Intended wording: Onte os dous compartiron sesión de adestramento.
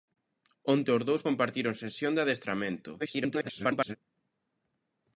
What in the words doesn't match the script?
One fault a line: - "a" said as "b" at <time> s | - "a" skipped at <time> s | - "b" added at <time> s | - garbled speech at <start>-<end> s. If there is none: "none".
- garbled speech at 3.0-4.0 s